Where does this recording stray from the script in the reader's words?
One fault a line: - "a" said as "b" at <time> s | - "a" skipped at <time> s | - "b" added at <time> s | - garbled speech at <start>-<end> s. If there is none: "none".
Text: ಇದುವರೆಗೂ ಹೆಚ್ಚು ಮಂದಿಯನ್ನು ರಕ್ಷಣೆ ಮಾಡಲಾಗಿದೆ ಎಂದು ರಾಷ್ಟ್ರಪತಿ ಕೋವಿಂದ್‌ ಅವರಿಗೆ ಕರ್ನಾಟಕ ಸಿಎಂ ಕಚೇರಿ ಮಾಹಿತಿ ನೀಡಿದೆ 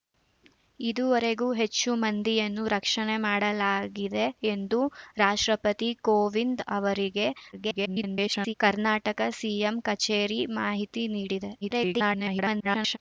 - garbled speech at 7.5-8.5 s
- garbled speech at 11.6-13.0 s